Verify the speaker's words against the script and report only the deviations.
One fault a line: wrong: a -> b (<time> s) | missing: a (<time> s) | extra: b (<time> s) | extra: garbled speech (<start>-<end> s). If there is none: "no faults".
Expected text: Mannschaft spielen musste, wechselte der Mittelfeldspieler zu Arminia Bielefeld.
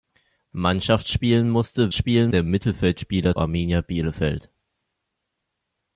wrong: wechselte -> spielen (1.9 s)
missing: zu (3.4 s)